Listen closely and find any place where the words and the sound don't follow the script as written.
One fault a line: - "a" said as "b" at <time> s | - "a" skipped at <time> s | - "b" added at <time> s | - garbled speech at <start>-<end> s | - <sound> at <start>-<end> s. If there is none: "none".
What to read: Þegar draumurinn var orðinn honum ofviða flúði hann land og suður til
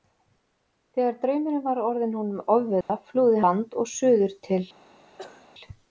- dropout at 2.8-2.9 s
- "hann" skipped at 3.5 s
- cough at 5.2-5.5 s